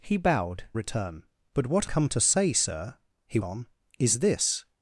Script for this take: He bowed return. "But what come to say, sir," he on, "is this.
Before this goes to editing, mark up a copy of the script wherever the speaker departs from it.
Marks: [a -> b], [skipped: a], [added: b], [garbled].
He bowed return. "But what come to say, sir," he on, "is this.